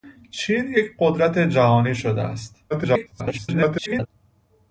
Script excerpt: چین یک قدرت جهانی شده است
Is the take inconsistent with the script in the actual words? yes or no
yes